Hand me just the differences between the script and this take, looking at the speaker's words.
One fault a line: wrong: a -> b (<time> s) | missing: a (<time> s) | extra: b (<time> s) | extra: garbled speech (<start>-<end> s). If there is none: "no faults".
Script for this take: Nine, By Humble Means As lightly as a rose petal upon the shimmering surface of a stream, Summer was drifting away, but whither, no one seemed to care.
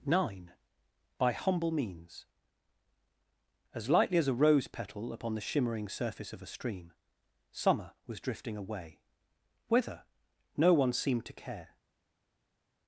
missing: but (9.0 s)